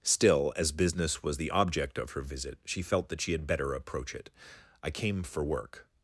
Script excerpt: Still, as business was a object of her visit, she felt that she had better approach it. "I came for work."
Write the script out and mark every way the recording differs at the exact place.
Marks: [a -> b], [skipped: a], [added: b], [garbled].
Still, as business was [a -> the] object of her visit, she felt that she had better approach it. "I came for work."